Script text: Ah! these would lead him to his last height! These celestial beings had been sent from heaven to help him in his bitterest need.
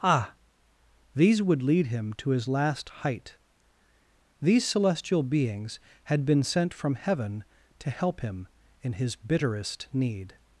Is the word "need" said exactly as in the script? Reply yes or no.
yes